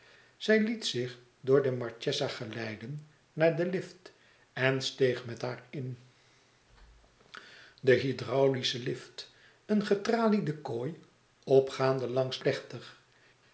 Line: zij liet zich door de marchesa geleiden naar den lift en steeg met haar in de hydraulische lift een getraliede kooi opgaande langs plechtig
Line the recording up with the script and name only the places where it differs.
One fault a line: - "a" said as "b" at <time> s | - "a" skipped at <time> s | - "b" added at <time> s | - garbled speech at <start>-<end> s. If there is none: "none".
none